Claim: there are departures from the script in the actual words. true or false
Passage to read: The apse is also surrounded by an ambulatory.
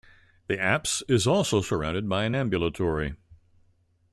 false